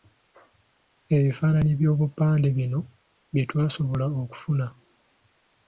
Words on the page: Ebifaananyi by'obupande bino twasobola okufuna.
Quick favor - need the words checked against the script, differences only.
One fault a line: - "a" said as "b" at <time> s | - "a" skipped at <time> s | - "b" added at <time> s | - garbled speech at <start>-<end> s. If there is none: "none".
- "bye" added at 3.3 s